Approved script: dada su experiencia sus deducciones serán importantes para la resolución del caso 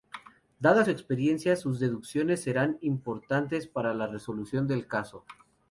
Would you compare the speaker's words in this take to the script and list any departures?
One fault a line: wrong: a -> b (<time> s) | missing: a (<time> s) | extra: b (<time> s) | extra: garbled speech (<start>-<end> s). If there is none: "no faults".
no faults